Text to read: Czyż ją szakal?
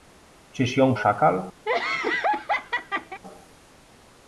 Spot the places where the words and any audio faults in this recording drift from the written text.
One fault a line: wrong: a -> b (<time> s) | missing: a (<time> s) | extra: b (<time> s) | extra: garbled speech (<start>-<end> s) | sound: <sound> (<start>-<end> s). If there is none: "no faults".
sound: laugh (1.7-3.2 s)